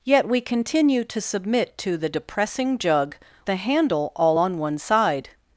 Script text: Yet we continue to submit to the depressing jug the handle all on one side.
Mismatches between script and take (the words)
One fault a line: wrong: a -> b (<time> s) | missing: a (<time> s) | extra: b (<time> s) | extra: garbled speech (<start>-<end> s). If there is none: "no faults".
no faults